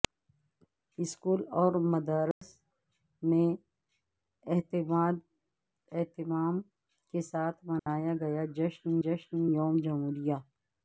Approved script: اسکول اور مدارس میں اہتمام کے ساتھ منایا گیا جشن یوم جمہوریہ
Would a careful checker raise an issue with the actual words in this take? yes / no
yes